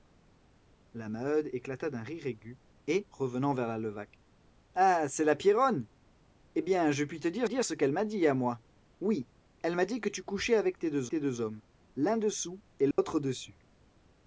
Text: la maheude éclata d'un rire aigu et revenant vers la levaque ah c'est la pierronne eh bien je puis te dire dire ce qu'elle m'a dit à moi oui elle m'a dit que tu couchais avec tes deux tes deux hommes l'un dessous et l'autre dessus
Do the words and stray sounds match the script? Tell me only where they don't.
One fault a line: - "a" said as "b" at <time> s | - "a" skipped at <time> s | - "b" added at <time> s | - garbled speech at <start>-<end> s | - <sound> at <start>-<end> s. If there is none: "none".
- dropout at 12.9-13.0 s